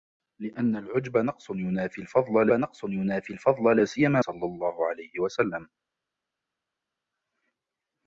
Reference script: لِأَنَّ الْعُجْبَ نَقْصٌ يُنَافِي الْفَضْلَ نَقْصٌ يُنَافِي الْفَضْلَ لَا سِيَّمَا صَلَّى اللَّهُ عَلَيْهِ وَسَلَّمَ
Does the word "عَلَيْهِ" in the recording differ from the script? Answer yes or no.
no